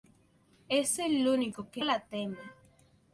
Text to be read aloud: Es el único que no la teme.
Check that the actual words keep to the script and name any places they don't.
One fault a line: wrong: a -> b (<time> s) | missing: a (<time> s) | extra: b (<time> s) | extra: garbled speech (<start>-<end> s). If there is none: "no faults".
missing: no (1.9 s)